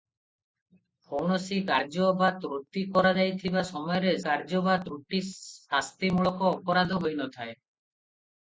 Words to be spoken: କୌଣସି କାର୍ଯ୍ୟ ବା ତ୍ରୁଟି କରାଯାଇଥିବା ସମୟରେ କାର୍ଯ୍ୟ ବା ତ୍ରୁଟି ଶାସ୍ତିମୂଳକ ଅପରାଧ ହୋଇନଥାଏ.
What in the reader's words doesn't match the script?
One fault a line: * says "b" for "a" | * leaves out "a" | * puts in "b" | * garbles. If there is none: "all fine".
all fine